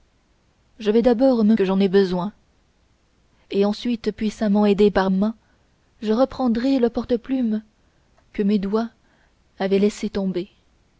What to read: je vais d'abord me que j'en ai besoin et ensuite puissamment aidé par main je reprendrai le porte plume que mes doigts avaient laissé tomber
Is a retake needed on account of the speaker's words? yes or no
no